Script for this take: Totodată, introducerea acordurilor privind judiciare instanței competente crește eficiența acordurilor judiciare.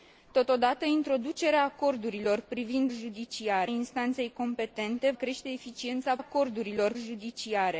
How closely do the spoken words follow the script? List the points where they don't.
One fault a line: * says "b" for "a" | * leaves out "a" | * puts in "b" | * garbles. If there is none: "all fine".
all fine